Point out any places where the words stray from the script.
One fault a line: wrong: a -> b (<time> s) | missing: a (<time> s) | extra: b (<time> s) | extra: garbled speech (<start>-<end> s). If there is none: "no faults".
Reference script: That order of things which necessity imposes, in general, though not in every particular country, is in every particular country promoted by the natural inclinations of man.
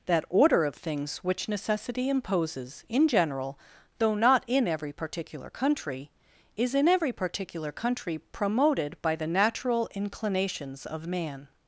no faults